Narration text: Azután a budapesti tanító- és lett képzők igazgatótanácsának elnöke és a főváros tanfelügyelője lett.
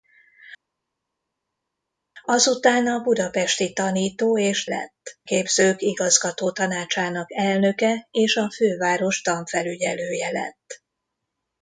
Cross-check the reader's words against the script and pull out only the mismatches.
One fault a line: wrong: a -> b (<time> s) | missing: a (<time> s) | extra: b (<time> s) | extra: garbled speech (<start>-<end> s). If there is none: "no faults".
no faults